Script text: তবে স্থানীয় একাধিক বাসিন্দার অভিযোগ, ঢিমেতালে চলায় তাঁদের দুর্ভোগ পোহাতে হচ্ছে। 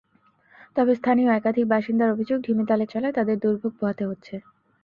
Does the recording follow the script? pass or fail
pass